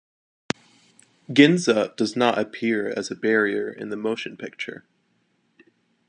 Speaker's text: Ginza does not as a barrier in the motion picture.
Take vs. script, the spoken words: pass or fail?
fail